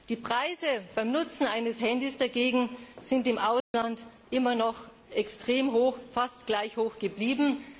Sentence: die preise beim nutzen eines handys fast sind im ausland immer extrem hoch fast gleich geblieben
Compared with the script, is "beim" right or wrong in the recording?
right